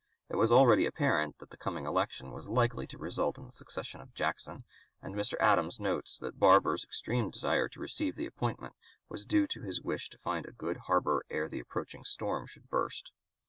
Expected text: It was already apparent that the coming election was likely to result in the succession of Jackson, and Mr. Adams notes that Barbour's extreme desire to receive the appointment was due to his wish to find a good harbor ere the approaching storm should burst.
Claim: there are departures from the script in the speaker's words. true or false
false